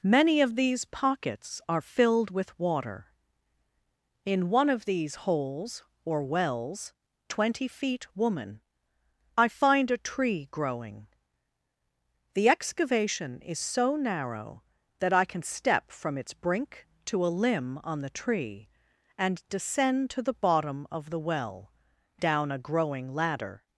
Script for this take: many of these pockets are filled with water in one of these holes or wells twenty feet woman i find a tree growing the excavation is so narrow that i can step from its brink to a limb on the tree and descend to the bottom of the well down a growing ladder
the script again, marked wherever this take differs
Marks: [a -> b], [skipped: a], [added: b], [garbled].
many of these pockets are filled with water in one of these holes or wells twenty feet woman i find a tree growing the excavation is so narrow that i can step from its brink to a limb on the tree and descend to the bottom of the well down a growing ladder